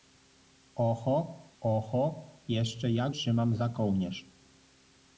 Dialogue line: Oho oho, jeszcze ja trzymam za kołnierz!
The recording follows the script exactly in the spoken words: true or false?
true